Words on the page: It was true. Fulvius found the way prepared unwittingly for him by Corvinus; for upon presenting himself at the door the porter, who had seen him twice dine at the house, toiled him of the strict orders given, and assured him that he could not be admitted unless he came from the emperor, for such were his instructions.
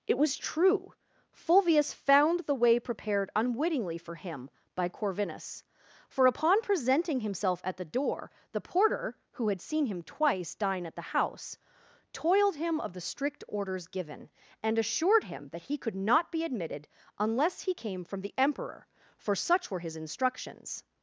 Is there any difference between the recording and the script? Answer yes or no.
no